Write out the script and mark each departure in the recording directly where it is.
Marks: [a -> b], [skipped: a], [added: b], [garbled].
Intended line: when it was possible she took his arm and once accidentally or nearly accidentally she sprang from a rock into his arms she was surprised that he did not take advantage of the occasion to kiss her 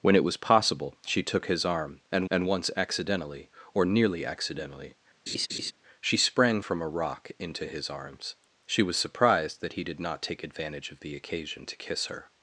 when it was possible she took his arm and [added: and] once accidentally or nearly accidentally she sprang from a rock into his arms she was surprised that he did not take advantage of the occasion to kiss her